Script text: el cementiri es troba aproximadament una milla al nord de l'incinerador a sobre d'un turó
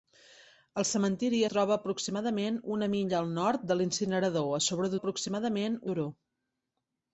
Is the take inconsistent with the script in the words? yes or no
yes